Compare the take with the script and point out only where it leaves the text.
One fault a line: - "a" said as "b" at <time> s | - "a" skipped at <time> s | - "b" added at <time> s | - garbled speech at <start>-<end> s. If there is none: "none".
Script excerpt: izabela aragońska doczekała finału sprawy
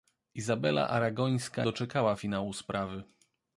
none